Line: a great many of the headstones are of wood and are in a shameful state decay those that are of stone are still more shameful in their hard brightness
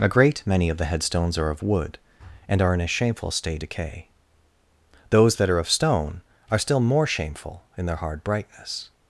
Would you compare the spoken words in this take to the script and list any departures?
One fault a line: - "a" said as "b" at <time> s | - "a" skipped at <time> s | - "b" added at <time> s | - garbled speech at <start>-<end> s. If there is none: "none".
none